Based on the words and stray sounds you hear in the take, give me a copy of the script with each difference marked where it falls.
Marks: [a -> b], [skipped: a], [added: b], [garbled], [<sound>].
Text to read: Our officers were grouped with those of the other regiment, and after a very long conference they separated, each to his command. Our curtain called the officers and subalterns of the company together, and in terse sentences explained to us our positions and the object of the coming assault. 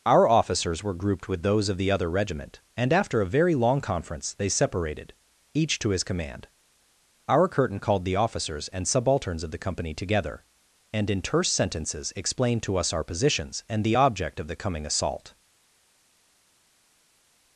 Our officers were grouped with those of the other regiment, and after a very long conference they separated, each to his command. Our curtain called the officers and subalterns of the company together, and in terse sentences explained to us our positions and the object of the coming assault.